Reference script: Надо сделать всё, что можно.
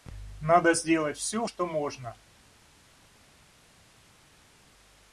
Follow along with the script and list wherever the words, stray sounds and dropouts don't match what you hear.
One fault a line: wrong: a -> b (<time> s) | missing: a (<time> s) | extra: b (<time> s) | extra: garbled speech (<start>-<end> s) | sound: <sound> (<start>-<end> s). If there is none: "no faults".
no faults